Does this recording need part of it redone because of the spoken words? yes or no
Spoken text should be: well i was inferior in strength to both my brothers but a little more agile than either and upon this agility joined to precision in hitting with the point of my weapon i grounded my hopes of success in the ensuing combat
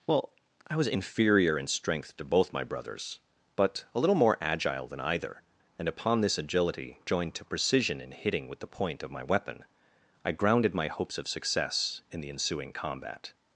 no